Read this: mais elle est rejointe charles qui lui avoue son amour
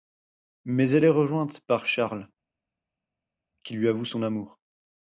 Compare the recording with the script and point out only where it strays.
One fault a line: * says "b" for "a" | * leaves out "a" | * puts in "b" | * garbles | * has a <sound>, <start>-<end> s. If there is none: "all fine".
* puts in "par"